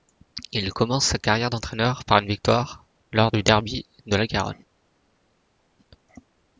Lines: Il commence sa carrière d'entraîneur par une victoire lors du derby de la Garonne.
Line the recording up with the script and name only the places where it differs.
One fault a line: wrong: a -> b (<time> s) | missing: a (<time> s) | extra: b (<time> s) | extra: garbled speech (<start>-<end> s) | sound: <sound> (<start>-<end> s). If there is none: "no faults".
no faults